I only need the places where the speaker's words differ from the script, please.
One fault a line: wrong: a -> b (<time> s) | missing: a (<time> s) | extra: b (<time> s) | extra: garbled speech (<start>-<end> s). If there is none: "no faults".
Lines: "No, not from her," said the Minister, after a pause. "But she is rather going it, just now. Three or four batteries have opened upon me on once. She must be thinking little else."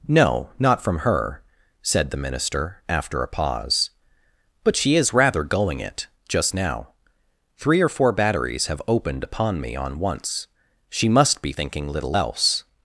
no faults